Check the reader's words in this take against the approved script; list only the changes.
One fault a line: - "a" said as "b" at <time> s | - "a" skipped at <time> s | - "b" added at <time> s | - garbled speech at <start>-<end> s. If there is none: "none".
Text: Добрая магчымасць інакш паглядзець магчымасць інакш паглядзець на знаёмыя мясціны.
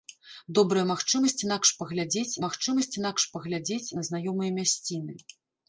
none